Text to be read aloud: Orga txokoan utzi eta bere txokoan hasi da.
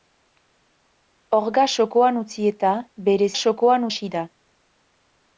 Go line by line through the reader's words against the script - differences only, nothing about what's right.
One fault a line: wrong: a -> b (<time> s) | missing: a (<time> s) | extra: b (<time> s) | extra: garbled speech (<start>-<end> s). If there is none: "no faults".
no faults